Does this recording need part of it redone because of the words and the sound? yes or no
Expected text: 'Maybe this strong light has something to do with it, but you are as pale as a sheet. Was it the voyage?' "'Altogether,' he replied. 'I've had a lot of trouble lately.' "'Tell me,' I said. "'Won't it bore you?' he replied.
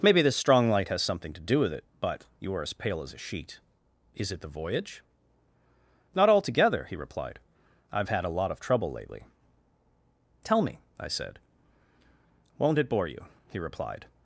yes